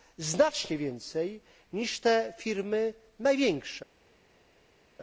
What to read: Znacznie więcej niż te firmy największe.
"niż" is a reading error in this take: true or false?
false